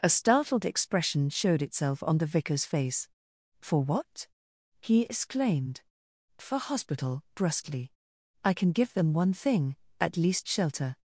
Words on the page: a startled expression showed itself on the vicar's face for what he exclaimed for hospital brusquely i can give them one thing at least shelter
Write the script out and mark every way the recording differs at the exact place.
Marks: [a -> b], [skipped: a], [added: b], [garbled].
a startled expression showed itself on the vicar's face for what he exclaimed for hospital brusquely i can give them one thing at least shelter